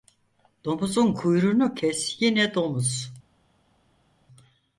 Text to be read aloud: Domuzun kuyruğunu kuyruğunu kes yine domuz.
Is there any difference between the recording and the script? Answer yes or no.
yes